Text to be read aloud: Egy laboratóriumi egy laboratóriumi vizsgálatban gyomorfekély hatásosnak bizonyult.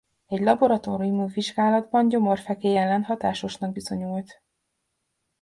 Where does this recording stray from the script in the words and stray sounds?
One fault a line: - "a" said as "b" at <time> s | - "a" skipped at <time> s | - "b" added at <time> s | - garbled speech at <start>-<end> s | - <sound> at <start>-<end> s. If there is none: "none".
- "egy laboratóriumi" skipped at 1.3 s
- "ellen" added at 2.8 s